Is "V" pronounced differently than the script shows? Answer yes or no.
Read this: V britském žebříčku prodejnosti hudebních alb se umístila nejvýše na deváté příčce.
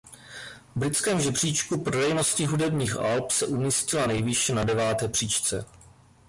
no